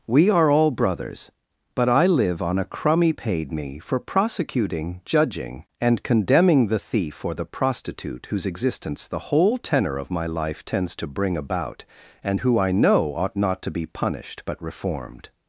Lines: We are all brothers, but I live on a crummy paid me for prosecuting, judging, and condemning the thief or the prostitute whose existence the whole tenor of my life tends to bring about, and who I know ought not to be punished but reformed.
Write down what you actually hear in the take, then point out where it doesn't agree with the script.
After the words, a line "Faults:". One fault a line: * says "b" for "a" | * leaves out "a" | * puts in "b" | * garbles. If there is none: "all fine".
We are all brothers, but I live on a crummy paid me for prosecuting, judging, and condemning the thief or the prostitute whose existence the whole tenor of my life tends to bring about, and who I know ought not to be punished but reformed.
Faults:
all fine